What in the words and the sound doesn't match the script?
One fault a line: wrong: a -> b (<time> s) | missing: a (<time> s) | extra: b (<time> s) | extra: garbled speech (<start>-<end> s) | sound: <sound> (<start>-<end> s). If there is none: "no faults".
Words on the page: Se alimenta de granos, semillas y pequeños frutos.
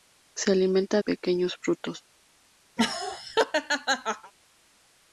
missing: de granos semillas (1.0 s)
sound: laugh (2.8-4.3 s)